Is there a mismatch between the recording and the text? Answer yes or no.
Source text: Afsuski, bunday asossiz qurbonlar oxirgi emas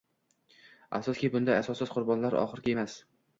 no